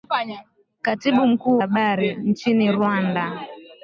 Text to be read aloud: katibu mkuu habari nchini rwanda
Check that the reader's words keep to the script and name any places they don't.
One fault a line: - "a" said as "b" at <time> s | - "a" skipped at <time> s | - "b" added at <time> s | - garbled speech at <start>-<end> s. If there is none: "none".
none